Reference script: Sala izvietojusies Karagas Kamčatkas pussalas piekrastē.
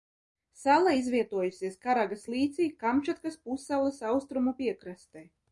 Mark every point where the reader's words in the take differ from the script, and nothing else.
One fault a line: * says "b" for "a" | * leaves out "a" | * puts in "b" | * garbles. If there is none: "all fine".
* puts in "līcī"
* puts in "austrumu"